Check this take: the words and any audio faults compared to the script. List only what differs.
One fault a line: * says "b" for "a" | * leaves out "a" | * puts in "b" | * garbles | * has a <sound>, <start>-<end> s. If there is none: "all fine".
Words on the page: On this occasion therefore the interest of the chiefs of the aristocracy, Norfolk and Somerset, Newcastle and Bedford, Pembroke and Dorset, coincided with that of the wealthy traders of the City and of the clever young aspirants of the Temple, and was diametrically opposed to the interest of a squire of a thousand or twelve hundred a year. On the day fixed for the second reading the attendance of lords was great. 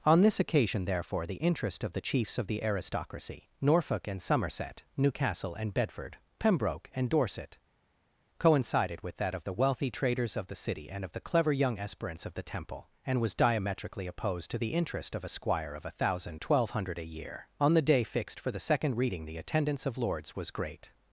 * leaves out "or"